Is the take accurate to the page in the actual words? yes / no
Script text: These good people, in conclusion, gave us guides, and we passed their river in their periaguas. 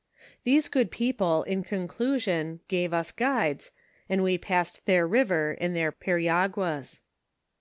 yes